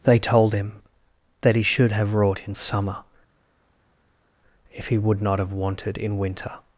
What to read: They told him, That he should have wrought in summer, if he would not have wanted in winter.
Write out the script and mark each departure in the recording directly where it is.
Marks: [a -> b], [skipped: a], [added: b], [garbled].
They told him, That he should have wrought in summer, if he would not have wanted in winter.